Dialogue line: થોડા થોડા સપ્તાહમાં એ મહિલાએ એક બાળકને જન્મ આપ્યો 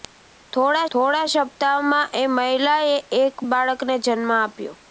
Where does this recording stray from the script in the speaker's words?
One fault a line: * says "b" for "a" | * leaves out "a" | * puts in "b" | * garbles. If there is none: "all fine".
all fine